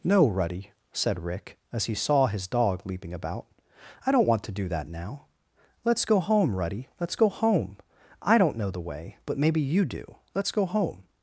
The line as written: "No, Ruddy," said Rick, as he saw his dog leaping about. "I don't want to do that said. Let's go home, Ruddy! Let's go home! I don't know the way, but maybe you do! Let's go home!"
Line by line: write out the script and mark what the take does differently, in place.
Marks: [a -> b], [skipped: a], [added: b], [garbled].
"No, Ruddy," said Rick, as he saw his dog leaping about. "I don't want to do that [said. -> now] Let's go home, Ruddy! Let's go home! I don't know the way, but maybe you do! Let's go home!"